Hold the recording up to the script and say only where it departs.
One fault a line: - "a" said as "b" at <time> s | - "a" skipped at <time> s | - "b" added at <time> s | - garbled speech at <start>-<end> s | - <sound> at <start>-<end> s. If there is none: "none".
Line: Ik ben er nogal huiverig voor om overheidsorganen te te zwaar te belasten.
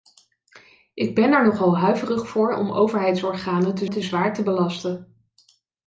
none